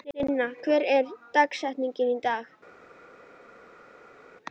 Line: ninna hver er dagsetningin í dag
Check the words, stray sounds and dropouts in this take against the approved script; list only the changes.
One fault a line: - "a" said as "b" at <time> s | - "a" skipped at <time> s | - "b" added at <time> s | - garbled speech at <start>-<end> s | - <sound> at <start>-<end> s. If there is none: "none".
none